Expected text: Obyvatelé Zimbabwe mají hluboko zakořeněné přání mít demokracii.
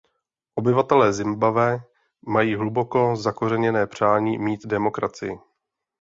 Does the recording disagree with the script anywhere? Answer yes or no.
no